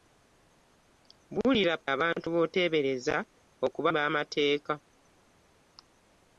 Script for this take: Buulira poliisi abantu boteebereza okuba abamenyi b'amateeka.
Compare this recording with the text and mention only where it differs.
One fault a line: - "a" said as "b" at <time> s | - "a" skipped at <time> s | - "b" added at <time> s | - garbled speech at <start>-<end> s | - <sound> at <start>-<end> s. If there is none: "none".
- "poliisi" skipped at 1.8 s
- "abamenyi" skipped at 3.9 s